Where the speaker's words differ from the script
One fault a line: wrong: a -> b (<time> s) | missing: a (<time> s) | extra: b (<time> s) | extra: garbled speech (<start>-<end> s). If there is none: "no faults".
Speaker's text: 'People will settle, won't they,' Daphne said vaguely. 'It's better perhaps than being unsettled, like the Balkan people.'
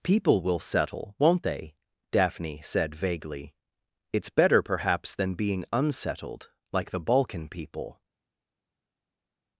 no faults